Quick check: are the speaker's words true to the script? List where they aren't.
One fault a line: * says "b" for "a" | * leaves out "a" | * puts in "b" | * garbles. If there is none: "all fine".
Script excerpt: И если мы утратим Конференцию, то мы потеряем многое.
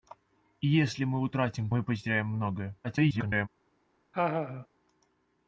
* leaves out "Конференцию то"
* garbles